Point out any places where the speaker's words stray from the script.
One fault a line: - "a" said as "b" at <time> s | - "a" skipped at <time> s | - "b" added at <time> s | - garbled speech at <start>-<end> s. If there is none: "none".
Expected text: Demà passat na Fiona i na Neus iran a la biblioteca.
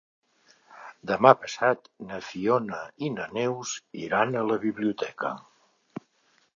none